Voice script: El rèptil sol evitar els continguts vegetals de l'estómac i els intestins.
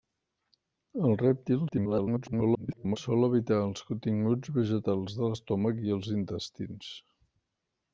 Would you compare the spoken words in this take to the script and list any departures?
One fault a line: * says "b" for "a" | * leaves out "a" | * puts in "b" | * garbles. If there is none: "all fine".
* garbles